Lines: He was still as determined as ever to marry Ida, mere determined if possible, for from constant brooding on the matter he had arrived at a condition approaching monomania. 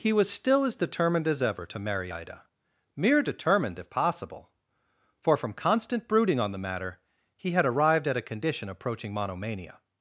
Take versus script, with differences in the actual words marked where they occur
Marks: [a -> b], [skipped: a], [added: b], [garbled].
He was still as determined as ever to marry Ida, mere determined if possible, for from constant brooding on the matter he had arrived at a condition approaching monomania.